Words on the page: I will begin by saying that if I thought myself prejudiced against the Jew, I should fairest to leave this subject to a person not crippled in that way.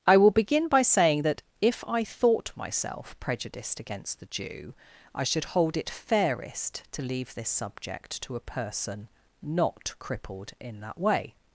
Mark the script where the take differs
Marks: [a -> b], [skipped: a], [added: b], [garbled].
I will begin by saying that if I thought myself prejudiced against the Jew, I should [added: hold it] fairest to leave this subject to a person not crippled in that way.